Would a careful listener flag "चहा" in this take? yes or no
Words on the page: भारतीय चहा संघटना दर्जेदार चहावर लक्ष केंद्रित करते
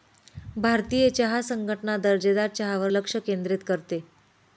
no